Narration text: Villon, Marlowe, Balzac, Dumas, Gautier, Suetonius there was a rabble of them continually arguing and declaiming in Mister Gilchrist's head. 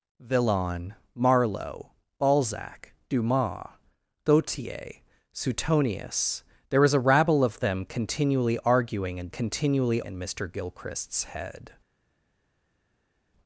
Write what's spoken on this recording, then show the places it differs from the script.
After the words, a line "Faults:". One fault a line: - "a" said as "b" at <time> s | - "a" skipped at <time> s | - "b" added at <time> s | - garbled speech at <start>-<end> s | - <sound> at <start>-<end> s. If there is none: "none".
Villon, Marlowe, Balzac, Dumas, Gautier, Suetonius there was a rabble of them continually arguing and continually in Mister Gilchrist's head.
Faults:
- "declaiming" said as "continually" at 9.3 s